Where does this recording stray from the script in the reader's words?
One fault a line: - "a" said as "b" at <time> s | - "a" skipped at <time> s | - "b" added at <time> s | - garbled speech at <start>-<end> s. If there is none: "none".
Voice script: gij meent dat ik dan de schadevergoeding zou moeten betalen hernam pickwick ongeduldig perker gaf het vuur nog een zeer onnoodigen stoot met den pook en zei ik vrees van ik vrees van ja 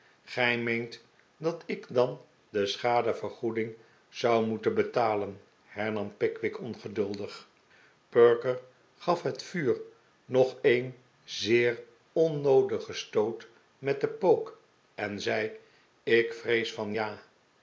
- "ik vrees van" skipped at 16.9 s